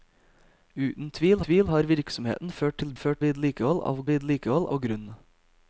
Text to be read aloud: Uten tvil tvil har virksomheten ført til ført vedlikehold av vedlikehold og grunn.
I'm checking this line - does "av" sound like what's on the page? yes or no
yes